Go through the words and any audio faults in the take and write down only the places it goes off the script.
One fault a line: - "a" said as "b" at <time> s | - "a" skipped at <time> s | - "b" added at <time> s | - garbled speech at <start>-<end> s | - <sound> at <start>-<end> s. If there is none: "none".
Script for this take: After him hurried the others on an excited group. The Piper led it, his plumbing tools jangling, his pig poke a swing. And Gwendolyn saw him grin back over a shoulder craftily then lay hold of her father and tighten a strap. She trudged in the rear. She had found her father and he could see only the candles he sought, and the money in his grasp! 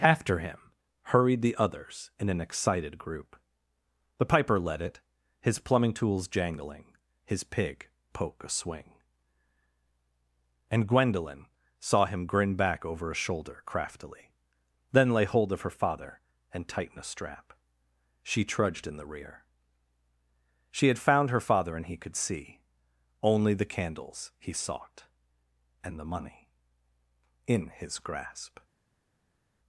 - "on" said as "in" at 2.2 s